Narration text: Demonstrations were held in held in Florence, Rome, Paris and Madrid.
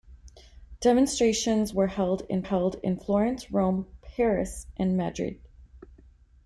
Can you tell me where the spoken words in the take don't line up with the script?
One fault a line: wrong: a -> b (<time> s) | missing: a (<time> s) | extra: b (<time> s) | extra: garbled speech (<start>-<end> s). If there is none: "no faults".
no faults